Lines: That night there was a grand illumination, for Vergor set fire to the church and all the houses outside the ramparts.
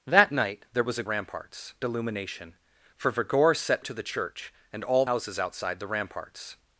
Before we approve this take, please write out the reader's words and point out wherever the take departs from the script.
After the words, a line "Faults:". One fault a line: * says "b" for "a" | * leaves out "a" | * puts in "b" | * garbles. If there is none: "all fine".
That night there was a ramparts illumination, for Vergor set to the church and all houses outside the ramparts.
Faults:
* says "ramparts" for "grand"
* leaves out "fire"
* leaves out "the"